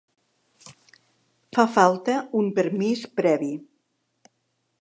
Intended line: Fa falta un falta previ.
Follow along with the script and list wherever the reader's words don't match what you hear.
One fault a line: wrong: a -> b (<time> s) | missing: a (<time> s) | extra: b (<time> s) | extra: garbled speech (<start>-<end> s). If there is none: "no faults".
wrong: falta -> permís (2.6 s)